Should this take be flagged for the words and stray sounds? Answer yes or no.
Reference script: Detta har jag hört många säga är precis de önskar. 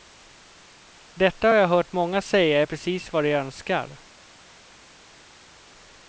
yes